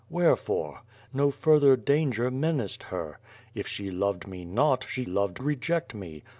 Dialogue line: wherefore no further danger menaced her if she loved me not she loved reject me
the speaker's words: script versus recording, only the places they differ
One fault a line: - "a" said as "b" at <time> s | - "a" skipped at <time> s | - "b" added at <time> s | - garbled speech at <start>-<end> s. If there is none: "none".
none